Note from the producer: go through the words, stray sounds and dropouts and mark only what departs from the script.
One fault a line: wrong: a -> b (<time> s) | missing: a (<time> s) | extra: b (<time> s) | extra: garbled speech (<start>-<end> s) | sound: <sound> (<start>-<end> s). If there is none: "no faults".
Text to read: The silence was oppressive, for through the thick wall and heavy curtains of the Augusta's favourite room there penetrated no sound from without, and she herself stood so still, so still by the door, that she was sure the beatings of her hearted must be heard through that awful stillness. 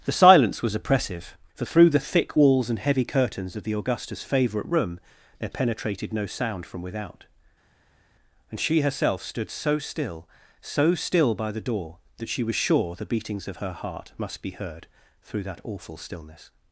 wrong: wall -> walls (2.4 s)
wrong: hearted -> heart (13.7 s)